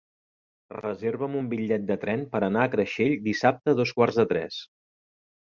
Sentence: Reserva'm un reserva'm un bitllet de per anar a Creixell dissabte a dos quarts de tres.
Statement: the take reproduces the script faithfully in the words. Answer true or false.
false